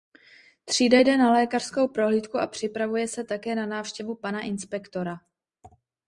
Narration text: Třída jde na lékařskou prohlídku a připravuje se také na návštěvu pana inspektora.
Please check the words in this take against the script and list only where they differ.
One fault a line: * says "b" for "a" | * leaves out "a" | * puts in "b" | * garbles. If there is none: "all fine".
all fine